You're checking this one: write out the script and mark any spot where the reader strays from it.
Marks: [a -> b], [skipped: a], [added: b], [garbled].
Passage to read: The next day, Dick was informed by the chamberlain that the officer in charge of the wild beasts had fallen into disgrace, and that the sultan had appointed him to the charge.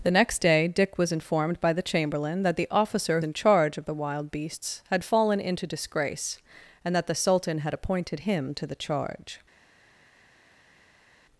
The next day, Dick was informed by the chamberlain that the officer in charge of the wild beasts had fallen into disgrace, and that the sultan had appointed him to the charge.